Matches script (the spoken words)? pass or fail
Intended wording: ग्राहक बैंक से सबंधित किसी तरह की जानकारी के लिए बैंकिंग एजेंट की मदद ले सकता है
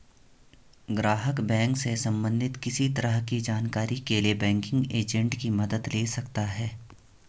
pass